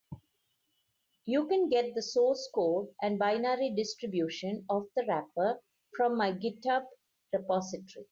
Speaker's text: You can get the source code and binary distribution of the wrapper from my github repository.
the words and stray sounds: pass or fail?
pass